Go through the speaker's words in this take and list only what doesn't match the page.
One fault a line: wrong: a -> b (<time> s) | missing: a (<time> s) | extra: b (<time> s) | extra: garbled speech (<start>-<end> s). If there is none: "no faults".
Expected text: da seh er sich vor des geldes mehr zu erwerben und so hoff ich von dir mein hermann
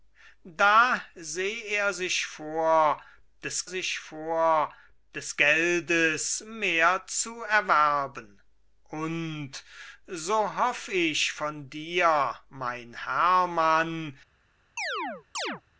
extra: sich vor des (3.7 s)